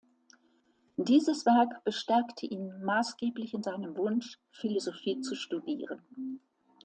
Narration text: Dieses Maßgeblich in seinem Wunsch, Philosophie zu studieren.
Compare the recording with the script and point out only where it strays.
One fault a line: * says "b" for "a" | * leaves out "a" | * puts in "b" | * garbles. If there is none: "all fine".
* puts in "Werk bestärkte ihn"